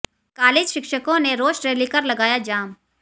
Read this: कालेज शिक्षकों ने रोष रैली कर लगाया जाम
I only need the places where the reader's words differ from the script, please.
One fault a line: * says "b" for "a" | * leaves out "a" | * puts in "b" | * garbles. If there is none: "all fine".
all fine